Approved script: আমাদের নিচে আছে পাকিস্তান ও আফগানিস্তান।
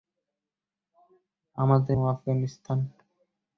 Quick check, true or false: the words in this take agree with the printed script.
false